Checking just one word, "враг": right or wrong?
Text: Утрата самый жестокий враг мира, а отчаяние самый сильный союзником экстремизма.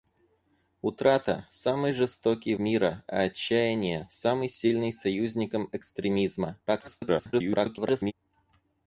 wrong